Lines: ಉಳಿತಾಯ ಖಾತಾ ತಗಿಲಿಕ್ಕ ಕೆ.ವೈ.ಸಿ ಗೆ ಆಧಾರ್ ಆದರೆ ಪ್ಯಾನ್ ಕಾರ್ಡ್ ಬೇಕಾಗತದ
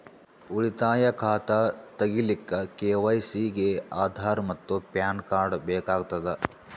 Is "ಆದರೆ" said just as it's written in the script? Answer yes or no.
no